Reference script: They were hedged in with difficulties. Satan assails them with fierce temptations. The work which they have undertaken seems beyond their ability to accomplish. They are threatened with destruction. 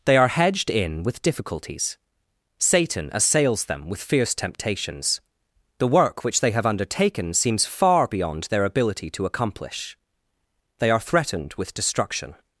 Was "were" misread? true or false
true